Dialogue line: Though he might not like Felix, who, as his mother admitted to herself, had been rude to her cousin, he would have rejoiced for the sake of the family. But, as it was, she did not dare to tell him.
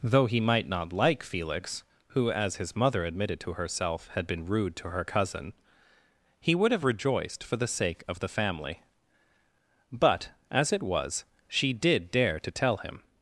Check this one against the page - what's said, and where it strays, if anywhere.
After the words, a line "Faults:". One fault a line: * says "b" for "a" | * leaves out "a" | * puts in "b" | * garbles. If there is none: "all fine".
Though he might not like Felix, who, as his mother admitted to herself, had been rude to her cousin, he would have rejoiced for the sake of the family. But, as it was, she did dare to tell him.
Faults:
* leaves out "not"